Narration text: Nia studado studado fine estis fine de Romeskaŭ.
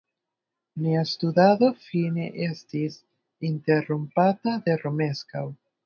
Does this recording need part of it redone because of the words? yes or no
yes